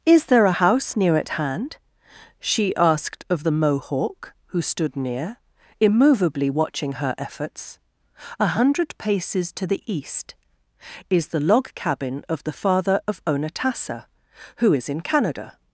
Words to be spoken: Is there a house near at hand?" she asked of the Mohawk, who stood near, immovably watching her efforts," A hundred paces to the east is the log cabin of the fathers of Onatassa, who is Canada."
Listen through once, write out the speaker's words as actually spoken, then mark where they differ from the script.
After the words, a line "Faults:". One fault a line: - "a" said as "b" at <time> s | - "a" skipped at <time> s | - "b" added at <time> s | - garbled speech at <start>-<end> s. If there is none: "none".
Is there a house near at hand?" she asked of the Mohawk, who stood near, immovably watching her efforts," A hundred paces to the east is the log cabin of the father of Onatassa, who is in Canada."
Faults:
- "fathers" said as "father" at 12.5 s
- "in" added at 14.9 s